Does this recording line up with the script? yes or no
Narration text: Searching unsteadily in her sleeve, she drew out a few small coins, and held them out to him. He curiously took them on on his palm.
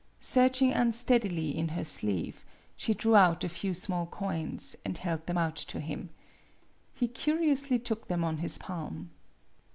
no